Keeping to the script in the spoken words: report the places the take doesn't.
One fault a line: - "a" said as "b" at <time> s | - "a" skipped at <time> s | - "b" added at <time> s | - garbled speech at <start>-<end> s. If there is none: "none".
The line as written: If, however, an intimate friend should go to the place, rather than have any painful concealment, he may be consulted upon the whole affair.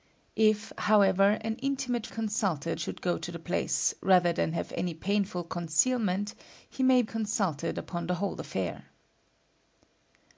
- "friend" said as "consulted" at 2.1 s
- "be" skipped at 7.0 s